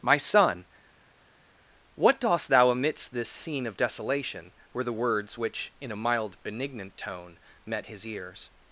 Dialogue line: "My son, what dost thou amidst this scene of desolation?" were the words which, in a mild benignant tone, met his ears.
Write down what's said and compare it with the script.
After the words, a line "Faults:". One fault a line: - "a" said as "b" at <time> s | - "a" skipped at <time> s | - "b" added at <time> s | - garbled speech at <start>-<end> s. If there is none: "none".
"My son, what dost thou amidst this scene of desolation?" were the words which, in a mild benignant tone, met his ears.
Faults:
none